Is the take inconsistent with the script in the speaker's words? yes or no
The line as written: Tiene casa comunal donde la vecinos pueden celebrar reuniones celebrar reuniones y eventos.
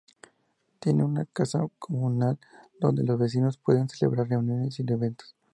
yes